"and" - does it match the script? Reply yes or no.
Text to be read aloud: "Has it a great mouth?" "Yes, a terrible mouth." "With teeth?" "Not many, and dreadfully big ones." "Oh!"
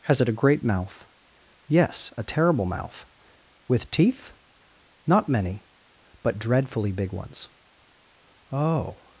no